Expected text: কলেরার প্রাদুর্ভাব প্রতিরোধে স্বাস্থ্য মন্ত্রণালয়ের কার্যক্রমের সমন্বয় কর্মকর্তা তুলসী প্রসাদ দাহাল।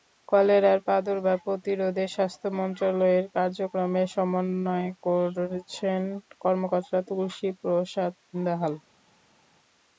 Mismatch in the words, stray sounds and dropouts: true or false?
true